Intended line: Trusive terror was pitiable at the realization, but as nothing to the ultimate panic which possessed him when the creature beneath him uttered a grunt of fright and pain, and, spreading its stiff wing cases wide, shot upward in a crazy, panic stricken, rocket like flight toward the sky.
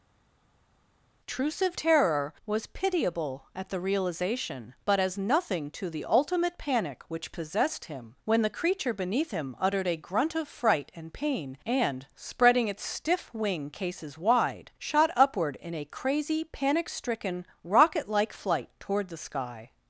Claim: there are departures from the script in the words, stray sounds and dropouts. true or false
false